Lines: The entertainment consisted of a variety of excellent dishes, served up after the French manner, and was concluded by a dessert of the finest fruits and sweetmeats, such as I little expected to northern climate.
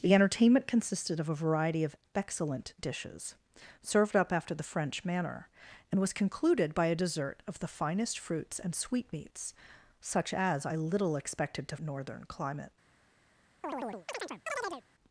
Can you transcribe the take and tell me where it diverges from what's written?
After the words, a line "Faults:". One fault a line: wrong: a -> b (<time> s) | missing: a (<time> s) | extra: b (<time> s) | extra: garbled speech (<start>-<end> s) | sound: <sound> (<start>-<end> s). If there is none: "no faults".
The entertainment consisted of a variety of excellent dishes, served up after the French manner, and was concluded by a dessert of the finest fruits and sweetmeats, such as I little expected to northern climate.
Faults:
sound: chirp (13.6-14.8 s)